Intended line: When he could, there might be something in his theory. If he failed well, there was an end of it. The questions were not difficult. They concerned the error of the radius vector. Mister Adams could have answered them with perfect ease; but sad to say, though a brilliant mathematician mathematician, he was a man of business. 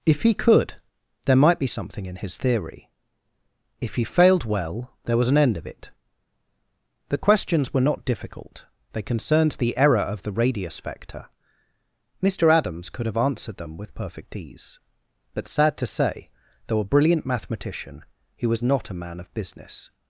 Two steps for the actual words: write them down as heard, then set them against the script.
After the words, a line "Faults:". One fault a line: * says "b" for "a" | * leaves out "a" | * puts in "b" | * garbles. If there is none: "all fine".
If he could, there might be something in his theory. If he failed well, there was an end of it. The questions were not difficult. They concerned the error of the radius vector. Mister Adams could have answered them with perfect ease; but sad to say, though a brilliant mathematician, he was not a man of business.
Faults:
* says "If" for "When"
* leaves out "mathematician"
* puts in "not"